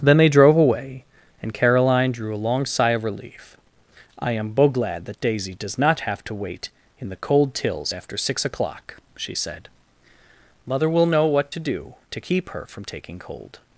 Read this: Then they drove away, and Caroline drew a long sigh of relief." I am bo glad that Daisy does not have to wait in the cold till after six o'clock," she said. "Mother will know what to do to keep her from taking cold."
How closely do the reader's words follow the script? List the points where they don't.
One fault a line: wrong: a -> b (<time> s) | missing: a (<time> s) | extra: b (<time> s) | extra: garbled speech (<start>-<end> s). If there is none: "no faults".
wrong: till -> tills (7.5 s)